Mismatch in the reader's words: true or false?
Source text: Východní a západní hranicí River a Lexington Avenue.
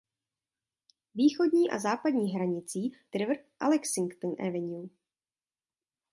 false